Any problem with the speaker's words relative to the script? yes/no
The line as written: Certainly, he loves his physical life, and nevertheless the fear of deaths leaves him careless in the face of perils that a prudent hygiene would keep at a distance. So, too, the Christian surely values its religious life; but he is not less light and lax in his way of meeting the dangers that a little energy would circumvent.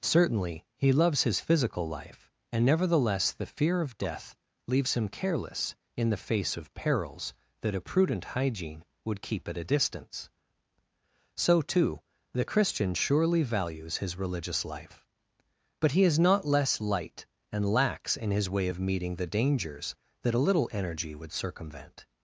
yes